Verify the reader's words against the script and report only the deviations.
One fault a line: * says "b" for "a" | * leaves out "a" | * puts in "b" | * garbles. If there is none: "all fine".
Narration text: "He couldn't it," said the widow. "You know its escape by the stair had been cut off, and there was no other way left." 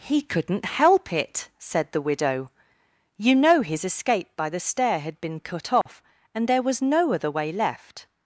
* puts in "help"
* says "his" for "its"